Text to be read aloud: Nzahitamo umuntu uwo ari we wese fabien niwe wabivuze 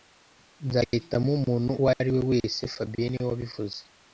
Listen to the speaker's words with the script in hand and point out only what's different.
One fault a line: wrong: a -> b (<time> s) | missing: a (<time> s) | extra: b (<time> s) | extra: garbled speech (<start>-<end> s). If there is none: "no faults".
no faults